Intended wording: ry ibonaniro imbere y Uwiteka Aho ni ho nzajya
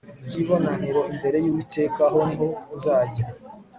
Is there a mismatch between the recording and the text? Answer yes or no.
no